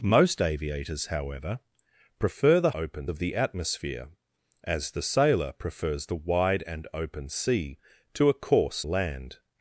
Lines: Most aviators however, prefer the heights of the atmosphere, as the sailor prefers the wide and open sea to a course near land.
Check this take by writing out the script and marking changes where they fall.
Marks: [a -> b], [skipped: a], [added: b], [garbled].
Most aviators however, prefer the [heights -> open] of the atmosphere, as the sailor prefers the wide and open sea to a course [skipped: near] land.